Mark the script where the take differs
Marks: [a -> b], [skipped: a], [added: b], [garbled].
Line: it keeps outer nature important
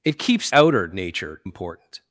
it keeps outer nature important